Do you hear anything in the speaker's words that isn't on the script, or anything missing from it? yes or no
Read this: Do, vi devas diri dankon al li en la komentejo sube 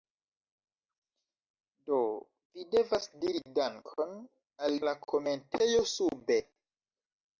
yes